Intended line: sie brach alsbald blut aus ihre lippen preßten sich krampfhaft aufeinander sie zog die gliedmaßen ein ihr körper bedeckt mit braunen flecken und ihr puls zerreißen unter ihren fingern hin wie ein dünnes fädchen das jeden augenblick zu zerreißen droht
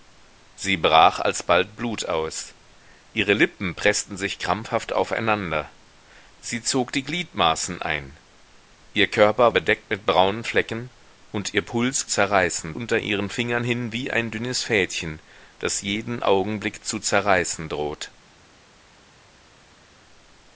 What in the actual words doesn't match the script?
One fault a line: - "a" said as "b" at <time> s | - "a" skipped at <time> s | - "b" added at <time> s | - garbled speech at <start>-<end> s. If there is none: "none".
none